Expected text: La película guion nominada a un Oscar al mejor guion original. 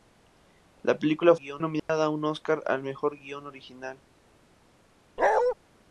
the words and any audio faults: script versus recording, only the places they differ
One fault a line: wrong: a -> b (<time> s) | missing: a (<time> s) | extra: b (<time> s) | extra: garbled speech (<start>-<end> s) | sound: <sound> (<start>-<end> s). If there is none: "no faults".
sound: dropout (1.8-1.9 s)
sound: bark (5.2-5.5 s)